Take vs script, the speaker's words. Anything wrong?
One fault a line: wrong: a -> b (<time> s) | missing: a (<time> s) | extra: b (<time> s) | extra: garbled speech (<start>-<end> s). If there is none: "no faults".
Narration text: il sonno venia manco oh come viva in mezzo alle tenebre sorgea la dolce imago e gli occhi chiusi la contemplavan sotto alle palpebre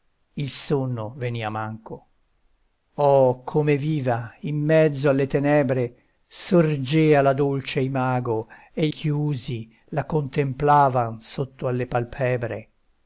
missing: gli occhi (8.9 s)